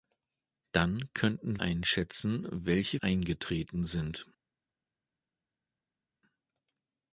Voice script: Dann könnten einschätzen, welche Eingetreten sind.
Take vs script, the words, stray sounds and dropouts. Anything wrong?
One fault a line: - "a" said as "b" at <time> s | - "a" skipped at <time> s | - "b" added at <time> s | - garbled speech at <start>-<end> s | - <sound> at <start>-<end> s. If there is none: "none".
none